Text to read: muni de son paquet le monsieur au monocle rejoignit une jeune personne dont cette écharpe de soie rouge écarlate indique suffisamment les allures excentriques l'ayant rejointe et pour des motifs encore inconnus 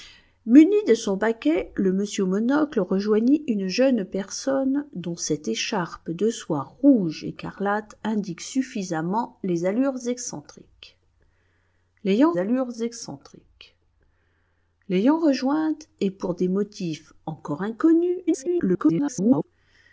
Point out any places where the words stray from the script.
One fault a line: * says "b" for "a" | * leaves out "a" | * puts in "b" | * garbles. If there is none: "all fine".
* puts in "allures excentriques l'ayant"
* garbles